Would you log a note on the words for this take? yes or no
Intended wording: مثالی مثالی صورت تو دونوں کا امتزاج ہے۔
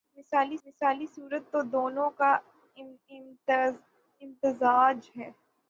no